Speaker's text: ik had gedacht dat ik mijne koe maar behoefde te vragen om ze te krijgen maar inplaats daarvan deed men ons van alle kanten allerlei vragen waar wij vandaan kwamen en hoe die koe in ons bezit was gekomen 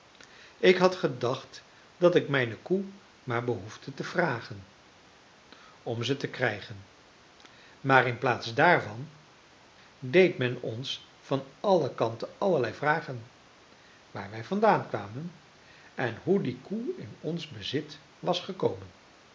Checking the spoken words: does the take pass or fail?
pass